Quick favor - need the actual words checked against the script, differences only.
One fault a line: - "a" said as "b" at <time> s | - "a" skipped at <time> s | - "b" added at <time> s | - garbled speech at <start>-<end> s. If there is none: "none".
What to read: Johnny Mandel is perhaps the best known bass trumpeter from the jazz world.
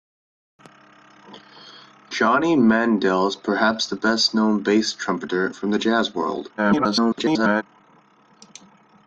- garbled speech at 6.6-7.6 s